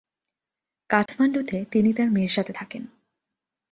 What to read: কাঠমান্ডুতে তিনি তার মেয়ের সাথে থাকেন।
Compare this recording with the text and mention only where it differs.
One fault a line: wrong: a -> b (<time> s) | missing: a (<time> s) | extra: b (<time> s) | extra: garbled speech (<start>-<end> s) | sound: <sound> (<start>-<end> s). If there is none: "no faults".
sound: dropout (1.1-1.1 s)